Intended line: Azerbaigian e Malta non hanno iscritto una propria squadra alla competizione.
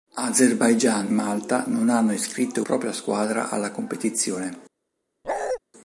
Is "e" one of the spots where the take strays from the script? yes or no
yes